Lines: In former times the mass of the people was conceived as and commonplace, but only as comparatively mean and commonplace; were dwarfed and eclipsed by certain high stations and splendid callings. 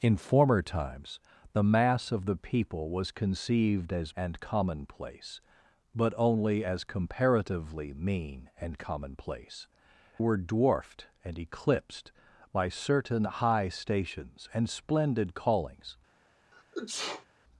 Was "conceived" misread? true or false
false